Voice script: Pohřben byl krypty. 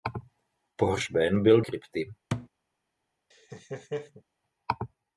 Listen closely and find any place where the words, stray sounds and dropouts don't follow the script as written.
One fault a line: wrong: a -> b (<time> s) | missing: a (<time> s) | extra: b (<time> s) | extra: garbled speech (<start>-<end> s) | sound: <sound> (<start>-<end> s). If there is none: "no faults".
sound: thud (2.3-2.5 s)
sound: laugh (3.3-4.2 s)